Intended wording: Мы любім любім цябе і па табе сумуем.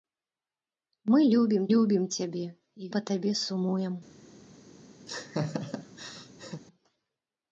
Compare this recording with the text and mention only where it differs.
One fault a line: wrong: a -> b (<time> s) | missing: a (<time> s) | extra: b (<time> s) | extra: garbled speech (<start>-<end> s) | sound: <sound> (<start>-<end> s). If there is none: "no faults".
sound: laugh (5.1-6.6 s)